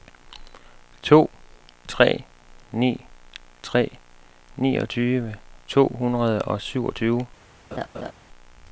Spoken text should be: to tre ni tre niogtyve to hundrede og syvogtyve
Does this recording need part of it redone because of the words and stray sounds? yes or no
yes